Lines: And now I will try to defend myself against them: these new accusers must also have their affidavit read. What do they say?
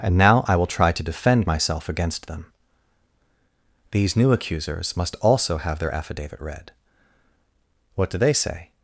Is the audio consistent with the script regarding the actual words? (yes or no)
yes